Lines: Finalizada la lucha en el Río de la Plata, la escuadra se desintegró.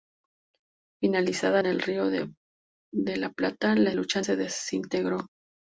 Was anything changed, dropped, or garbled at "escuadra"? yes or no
yes